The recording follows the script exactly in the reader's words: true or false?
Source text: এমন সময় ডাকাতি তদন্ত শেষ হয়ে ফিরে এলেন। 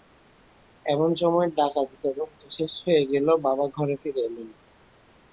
false